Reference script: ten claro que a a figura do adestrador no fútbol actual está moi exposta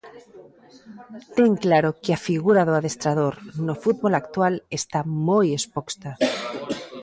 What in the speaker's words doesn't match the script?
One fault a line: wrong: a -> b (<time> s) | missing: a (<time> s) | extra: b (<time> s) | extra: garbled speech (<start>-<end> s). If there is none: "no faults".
missing: a (2.2 s)